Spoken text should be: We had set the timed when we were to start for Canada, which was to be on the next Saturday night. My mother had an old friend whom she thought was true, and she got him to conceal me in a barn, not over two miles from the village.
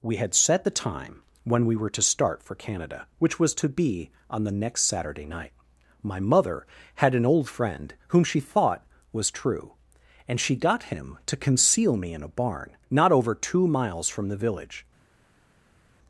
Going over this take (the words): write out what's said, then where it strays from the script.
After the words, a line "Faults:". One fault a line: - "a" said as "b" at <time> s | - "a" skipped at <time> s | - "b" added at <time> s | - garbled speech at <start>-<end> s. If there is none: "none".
We had set the time when we were to start for Canada, which was to be on the next Saturday night. My mother had an old friend whom she thought was true, and she got him to conceal me in a barn, not over two miles from the village.
Faults:
- "timed" said as "time" at 0.7 s